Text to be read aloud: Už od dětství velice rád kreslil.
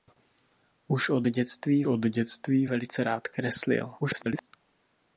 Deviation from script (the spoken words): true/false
true